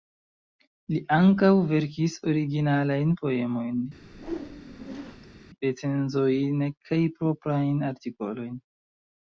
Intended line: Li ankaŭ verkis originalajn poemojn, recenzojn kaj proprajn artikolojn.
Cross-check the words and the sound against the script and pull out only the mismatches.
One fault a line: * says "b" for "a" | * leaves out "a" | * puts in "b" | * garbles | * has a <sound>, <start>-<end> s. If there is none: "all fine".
* has a whoosh, 4.0-5.4 s